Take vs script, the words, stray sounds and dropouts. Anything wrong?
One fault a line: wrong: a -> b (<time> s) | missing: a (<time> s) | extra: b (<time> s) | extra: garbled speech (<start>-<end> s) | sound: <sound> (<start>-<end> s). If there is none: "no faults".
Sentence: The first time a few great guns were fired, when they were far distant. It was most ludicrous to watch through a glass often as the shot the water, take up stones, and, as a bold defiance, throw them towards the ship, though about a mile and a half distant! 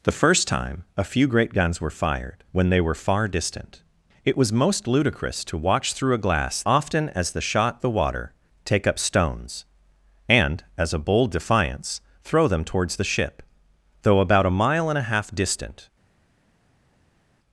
no faults